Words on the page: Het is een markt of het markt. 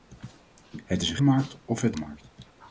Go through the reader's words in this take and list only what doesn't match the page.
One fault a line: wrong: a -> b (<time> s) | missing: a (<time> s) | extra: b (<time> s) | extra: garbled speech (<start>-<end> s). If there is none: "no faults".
no faults